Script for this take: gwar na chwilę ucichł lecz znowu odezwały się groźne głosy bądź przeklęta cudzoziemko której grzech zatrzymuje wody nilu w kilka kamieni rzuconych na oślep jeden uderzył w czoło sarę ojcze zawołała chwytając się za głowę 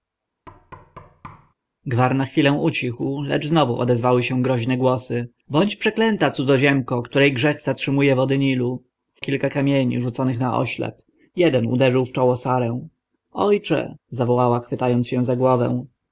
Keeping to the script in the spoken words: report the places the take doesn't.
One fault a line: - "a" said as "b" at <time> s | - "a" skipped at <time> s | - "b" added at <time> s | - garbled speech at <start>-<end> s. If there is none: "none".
none